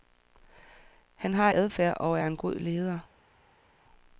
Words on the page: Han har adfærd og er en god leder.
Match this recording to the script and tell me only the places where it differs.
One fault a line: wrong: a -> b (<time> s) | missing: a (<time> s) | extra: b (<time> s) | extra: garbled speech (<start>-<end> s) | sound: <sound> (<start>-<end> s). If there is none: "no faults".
no faults